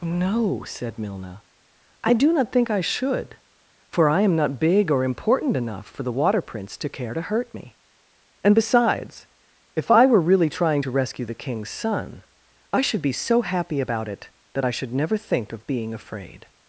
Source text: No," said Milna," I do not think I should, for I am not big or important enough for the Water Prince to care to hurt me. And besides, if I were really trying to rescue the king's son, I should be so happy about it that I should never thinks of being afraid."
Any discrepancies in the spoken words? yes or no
yes